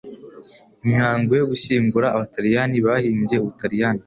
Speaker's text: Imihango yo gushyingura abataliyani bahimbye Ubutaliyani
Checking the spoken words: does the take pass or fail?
pass